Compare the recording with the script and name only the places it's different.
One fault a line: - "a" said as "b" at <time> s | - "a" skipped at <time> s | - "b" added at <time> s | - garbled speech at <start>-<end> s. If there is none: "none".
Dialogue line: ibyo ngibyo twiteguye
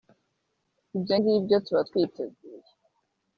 - "tuba" added at 1.6 s